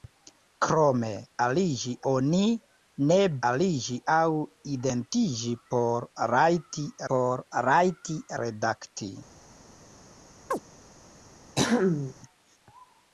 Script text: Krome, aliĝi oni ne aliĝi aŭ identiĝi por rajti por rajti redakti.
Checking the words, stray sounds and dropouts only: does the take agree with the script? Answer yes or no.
no